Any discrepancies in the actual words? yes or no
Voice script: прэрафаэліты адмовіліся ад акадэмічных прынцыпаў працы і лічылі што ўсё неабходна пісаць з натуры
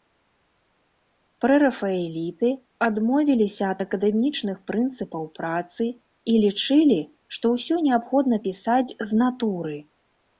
no